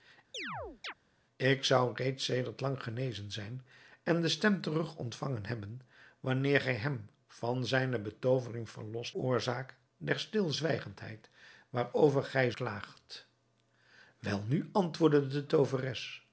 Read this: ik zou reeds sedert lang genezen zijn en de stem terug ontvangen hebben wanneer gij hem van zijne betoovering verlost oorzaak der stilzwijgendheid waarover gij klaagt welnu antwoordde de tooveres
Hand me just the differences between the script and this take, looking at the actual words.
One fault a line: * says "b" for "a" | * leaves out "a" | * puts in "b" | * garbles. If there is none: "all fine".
all fine